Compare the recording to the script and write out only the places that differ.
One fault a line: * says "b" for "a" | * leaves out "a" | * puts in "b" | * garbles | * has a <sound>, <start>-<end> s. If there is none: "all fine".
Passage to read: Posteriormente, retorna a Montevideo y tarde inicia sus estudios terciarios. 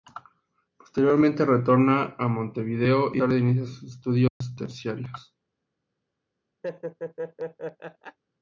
* has a dropout, 4.3-4.4 s
* has a laugh, 6.6-8.2 s